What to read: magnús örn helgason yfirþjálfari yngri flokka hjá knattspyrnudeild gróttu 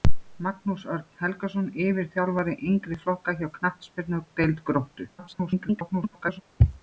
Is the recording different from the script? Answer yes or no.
yes